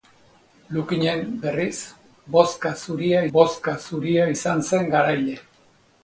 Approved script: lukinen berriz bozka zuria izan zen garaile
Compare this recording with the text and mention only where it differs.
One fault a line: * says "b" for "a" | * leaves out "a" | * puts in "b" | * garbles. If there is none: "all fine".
* puts in "bozka zuria"